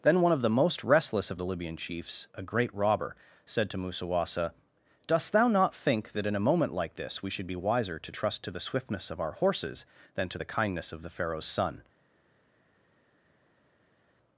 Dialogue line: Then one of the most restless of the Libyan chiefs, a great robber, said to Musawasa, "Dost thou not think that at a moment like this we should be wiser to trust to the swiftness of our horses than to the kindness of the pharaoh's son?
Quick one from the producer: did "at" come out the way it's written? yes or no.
no